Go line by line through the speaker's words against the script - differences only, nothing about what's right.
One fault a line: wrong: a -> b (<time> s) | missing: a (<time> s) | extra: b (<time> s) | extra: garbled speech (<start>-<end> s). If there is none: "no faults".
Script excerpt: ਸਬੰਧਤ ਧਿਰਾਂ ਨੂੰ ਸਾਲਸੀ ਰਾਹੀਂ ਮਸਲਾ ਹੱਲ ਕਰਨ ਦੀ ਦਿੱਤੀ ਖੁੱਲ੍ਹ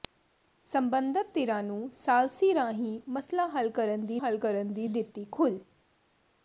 extra: ਹੱਲ ਕਰਨ ਦੀ (4.2 s)